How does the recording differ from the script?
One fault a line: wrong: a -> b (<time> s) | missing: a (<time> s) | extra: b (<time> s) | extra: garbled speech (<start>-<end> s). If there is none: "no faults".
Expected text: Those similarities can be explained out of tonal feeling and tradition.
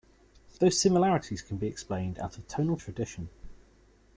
missing: feeling and (2.8 s)